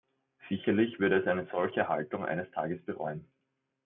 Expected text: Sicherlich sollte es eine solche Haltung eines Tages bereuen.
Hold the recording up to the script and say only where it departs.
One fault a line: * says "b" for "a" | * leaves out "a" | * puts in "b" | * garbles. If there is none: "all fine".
* says "würde" for "sollte"